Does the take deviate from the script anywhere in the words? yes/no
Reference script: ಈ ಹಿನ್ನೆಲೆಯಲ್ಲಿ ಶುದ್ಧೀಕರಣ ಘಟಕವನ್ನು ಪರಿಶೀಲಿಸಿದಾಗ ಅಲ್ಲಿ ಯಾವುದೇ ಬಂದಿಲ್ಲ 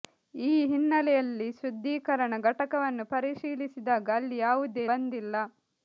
no